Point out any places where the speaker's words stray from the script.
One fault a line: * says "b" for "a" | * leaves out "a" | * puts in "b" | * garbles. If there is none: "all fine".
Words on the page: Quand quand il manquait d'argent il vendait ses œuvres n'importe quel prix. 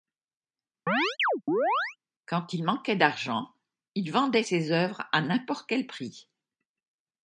* leaves out "quand"
* puts in "à"